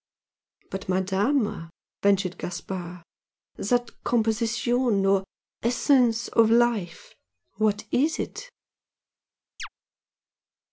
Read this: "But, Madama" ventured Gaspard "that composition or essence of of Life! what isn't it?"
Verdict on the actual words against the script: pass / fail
fail